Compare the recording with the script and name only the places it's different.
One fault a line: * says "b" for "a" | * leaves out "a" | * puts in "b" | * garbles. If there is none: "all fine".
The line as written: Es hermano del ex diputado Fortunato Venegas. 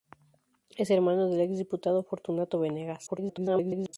* garbles